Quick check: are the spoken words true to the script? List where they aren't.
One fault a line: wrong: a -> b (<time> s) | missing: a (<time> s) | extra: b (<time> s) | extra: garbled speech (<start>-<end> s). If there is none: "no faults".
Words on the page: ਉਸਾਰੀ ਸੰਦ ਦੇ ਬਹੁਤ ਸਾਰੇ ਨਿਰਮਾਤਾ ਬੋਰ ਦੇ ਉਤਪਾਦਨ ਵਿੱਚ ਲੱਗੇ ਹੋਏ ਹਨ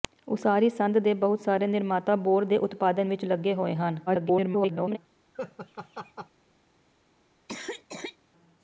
extra: garbled speech (4.1-5.0 s)